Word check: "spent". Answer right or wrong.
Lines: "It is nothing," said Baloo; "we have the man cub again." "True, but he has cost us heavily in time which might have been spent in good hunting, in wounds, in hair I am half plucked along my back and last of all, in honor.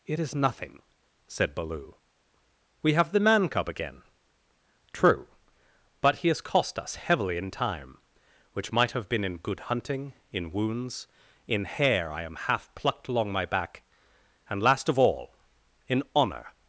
wrong